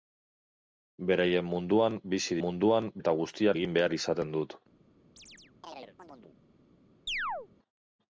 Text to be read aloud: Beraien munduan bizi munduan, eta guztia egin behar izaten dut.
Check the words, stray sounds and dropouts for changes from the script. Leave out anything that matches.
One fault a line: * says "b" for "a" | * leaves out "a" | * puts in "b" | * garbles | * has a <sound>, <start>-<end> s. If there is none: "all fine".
* has a chirp, 5.2-6.4 s
* has a chirp, 7.1-7.5 s